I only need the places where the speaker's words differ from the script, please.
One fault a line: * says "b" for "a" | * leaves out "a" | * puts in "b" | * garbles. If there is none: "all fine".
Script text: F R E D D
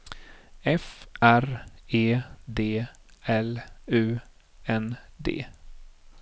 * puts in "L U N"